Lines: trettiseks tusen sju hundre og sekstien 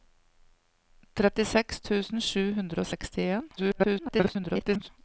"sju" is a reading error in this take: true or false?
false